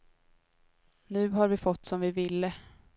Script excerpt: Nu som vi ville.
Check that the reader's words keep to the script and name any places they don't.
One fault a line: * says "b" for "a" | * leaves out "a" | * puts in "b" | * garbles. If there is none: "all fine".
* puts in "har vi fått"